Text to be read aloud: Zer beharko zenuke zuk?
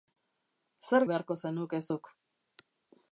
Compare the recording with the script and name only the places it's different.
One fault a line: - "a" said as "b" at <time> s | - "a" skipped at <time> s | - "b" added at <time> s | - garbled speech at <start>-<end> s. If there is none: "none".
none